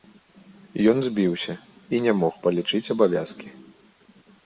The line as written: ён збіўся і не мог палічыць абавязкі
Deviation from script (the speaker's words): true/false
false